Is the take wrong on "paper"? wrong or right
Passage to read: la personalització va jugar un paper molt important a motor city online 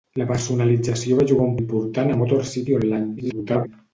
wrong